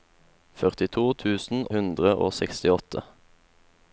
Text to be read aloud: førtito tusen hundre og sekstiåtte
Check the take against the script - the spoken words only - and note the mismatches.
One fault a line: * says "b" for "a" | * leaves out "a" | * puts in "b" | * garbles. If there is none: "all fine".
all fine